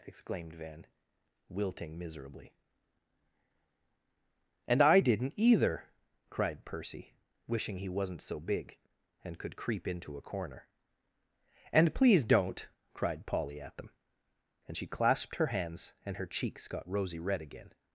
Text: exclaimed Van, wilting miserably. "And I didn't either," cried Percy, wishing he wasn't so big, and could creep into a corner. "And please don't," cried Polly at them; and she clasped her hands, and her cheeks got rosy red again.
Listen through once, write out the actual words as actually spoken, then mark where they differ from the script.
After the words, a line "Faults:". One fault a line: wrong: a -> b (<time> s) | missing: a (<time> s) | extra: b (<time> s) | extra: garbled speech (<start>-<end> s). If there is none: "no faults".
exclaimed Van, wilting miserably. "And I didn't either," cried Percy, wishing he wasn't so big, and could creep into a corner. "And please don't," cried Polly at them; and she clasped her hands, and her cheeks got rosy red again.
Faults:
no faults